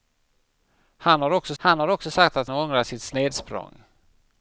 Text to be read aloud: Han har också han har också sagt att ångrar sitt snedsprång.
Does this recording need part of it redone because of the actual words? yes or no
no